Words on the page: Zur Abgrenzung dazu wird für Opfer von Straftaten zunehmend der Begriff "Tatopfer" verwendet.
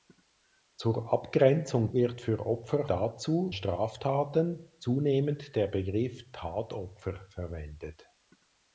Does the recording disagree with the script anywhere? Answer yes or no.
yes